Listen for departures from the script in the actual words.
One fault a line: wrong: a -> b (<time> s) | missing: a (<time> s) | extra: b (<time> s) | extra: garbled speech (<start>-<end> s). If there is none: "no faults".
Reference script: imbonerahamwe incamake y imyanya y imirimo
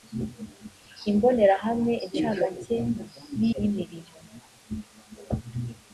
missing: imyanya (3.4 s)